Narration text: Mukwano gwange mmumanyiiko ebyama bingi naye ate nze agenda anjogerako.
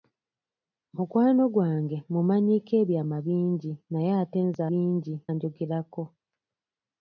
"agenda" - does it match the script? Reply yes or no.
no